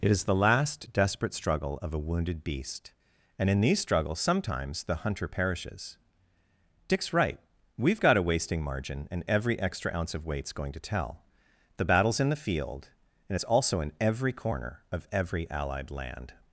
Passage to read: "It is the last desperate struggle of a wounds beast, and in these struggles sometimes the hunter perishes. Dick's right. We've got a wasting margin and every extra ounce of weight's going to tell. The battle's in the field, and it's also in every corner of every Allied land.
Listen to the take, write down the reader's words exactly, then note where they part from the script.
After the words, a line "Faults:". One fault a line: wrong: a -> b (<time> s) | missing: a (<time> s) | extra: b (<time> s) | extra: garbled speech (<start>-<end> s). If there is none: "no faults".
"It is the last desperate struggle of a wounded beast, and in these struggles sometimes the hunter perishes. Dick's right. We've got a wasting margin and every extra ounce of weight's going to tell. The battle's in the field, and it's also in every corner of every Allied land.
Faults:
wrong: wounds -> wounded (2.0 s)